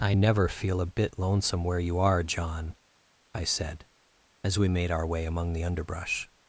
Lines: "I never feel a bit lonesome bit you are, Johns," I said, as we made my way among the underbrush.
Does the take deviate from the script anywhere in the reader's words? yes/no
yes